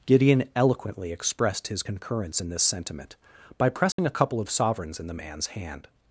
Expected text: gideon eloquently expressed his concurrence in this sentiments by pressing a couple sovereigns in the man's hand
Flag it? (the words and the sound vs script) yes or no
yes